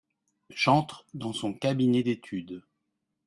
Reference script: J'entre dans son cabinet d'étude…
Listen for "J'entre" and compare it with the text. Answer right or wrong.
right